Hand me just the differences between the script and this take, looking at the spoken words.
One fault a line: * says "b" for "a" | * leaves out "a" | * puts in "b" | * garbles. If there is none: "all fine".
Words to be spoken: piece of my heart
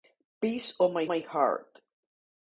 * puts in "my"